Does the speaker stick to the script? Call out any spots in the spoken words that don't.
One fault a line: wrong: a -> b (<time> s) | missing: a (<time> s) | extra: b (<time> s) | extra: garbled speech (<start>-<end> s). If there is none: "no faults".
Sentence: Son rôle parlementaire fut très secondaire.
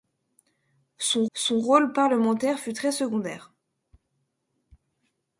extra: son (1.3 s)